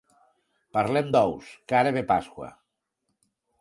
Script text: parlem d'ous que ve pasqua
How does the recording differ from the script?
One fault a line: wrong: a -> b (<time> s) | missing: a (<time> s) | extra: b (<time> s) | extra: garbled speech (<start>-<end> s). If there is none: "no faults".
extra: ara (1.8 s)